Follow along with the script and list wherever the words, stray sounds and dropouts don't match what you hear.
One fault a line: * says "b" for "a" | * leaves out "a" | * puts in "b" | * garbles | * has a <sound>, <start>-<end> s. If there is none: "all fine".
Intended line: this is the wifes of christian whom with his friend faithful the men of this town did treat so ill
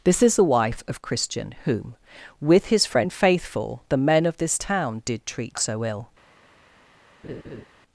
* says "wife" for "wifes"
* has a laugh, 7.2-7.6 s